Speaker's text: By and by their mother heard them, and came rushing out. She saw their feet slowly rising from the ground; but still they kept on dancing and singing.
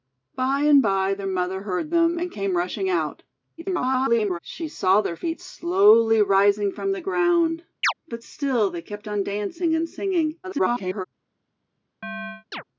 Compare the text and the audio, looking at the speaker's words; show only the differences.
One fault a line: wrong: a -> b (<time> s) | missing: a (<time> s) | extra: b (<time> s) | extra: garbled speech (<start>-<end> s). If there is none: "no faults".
extra: garbled speech (3.6-4.4 s)
extra: garbled speech (10.4-11.0 s)